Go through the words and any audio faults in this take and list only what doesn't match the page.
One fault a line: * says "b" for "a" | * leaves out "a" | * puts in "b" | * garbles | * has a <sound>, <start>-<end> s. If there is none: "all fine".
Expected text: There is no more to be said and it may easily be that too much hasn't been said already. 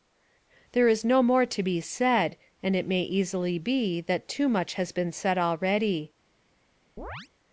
* says "has" for "hasn't"
* has a chirp, 7.0-7.3 s